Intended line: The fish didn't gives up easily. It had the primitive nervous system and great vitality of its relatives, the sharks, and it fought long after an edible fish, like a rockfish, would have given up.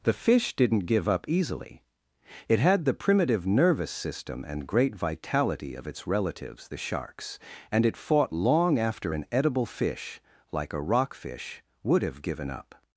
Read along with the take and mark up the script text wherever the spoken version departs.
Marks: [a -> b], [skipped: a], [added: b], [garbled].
The fish didn't [gives -> give] up easily. It had the primitive nervous system and great vitality of its relatives, the sharks, and it fought long after an edible fish, like a rockfish, would have given up.